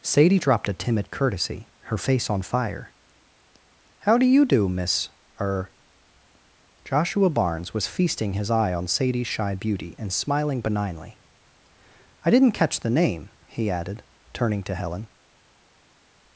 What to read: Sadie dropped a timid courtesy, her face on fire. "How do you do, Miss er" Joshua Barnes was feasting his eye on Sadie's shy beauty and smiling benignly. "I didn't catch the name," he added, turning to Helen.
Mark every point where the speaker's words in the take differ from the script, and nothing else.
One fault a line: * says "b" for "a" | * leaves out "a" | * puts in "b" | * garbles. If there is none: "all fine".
all fine